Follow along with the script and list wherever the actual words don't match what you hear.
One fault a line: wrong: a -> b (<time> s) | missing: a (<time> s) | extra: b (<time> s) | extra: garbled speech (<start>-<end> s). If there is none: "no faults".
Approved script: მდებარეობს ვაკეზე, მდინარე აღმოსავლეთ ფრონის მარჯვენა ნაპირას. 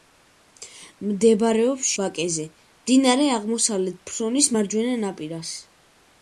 no faults